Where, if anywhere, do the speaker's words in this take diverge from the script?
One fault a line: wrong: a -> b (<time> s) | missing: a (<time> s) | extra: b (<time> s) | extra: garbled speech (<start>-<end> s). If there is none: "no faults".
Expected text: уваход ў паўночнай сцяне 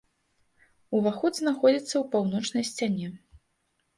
extra: знаходзіцца (1.4 s)